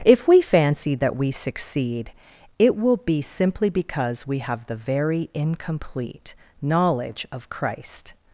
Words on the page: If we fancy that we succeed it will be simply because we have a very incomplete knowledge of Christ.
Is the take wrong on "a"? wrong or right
wrong